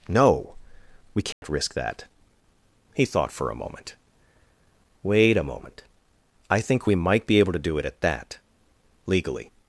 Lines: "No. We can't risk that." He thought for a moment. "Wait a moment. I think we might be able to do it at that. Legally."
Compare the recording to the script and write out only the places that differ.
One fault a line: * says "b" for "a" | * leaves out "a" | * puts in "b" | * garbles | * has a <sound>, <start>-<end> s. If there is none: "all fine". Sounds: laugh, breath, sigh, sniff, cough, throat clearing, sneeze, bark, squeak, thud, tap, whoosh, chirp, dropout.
* has a dropout, 1.3-1.4 s